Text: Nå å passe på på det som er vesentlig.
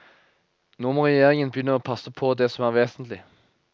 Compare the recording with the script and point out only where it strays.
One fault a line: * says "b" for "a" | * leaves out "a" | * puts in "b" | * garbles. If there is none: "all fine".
* puts in "må regjeringen begynne"
* leaves out "på"